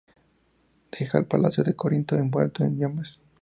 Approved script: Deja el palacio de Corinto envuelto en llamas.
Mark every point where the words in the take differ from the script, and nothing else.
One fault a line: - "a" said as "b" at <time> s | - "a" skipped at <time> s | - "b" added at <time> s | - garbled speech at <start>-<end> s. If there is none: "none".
none